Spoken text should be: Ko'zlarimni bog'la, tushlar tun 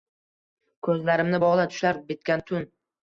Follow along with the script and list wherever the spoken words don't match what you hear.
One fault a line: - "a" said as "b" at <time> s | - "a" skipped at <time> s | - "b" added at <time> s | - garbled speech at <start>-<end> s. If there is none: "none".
- "bitgan" added at 2.1 s